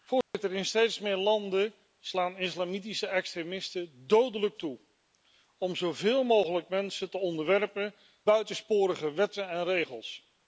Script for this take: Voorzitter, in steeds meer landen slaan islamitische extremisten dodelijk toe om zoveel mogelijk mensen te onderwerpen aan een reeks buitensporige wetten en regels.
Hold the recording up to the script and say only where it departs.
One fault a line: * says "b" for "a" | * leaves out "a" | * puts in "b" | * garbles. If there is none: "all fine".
* leaves out "aan een reeks"